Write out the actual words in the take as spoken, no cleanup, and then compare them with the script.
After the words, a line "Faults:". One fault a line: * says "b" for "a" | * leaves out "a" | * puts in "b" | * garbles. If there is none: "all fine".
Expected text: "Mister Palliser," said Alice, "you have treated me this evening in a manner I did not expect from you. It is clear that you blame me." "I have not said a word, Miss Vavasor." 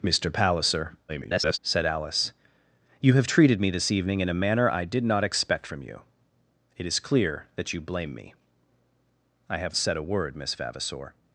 "Mister Palliser," [garbled] said Alice, "you have treated me this evening in a manner I did not expect from you. It is clear that you blame me." "I have said a word, Miss Vavasor."
Faults:
* garbles
* leaves out "not"